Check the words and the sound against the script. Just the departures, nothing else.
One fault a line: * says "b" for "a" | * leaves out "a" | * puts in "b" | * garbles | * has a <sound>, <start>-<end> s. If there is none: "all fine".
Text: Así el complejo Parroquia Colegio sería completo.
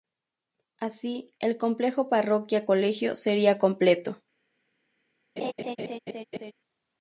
* has a laugh, 5.4-6.5 s